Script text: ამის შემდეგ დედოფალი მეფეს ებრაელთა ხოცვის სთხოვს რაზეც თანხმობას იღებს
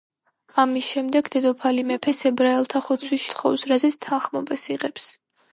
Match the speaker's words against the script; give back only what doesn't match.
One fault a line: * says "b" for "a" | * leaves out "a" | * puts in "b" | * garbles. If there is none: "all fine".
all fine